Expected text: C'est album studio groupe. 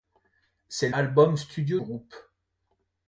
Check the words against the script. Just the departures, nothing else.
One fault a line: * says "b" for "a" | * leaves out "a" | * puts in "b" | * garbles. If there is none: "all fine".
all fine